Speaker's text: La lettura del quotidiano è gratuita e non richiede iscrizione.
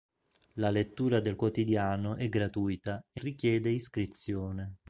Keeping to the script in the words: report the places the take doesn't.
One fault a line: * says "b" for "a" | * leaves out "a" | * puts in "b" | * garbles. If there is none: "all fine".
* leaves out "non"